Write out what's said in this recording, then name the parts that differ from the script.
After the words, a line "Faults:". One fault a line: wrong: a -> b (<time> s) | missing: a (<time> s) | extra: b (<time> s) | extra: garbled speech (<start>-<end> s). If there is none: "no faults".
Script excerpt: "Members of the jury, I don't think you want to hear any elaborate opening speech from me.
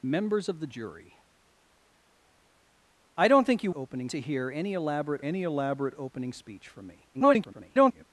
"Members of the jury, I don't think you opening to hear any elaborate any elaborate opening speech from me. [garbled]
Faults:
wrong: want -> opening (3.7 s)
extra: any elaborate (5.2 s)
extra: garbled speech (7.1-8.0 s)